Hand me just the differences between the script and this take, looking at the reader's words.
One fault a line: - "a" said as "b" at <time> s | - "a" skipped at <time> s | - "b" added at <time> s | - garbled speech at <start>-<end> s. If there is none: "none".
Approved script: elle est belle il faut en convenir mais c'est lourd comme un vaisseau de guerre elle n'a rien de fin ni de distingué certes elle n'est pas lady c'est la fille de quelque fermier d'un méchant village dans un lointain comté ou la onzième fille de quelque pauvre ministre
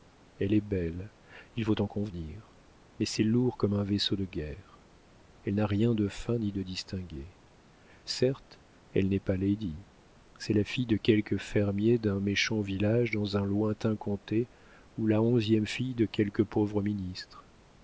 none